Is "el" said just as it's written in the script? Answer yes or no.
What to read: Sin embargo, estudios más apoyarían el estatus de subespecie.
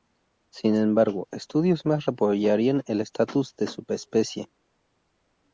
yes